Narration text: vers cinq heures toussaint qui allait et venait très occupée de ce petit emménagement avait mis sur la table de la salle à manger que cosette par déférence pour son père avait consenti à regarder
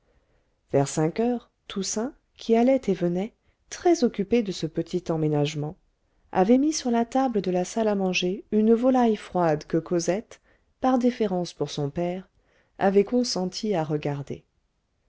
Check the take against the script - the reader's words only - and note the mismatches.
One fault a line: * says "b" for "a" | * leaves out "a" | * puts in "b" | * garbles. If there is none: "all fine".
* puts in "une volaille froide"